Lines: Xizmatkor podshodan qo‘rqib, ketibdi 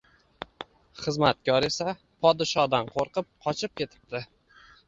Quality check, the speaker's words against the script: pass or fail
fail